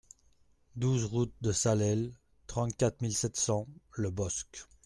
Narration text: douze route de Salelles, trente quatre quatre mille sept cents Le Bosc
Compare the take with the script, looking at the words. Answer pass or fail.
fail